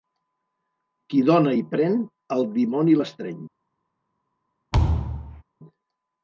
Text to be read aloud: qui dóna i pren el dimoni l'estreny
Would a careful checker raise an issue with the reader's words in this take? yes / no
no